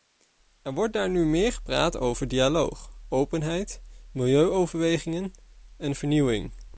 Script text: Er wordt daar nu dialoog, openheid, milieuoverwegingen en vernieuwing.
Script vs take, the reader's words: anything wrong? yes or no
yes